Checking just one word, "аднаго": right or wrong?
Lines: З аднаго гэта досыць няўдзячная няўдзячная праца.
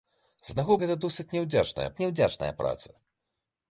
right